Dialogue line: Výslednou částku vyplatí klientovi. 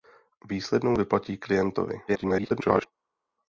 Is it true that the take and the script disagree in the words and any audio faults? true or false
true